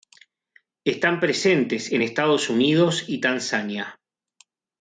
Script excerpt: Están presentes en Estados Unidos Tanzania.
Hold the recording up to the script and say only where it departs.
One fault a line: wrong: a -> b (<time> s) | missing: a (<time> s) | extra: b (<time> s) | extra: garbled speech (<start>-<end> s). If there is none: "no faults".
extra: y (3.1 s)